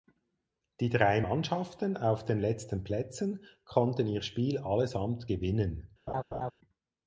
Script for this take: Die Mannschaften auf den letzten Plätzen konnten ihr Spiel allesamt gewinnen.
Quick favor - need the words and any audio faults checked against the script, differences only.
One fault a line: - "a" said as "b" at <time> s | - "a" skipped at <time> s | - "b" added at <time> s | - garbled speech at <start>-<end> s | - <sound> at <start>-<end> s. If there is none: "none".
- "drei" added at 0.9 s
- laugh at 6.1-6.5 s